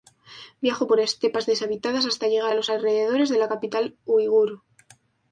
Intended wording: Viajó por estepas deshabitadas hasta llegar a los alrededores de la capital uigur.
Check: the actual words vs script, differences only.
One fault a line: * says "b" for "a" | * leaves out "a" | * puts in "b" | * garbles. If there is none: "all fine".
all fine